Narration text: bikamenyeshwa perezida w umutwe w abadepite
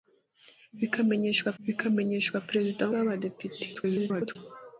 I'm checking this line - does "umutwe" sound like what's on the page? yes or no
no